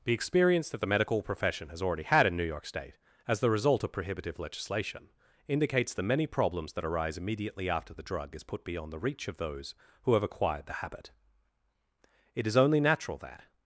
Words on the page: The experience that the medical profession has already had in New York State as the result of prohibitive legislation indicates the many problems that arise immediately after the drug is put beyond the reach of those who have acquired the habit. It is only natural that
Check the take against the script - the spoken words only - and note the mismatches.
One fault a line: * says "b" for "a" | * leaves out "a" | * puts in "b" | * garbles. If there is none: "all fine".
all fine